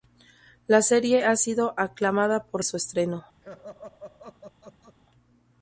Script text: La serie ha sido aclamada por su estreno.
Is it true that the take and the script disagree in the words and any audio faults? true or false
true